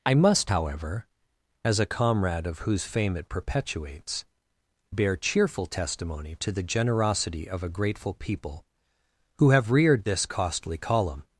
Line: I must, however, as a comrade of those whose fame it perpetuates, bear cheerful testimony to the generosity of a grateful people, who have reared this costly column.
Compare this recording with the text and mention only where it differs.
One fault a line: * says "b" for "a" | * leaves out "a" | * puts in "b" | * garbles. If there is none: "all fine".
* leaves out "those"